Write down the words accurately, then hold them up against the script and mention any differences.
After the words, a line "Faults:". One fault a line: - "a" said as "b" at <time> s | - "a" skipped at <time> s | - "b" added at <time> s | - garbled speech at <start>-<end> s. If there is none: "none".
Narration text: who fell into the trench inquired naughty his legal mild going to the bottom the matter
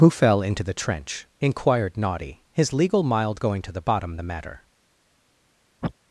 who fell into the trench inquired naughty his legal mild going to the bottom the matter
Faults:
none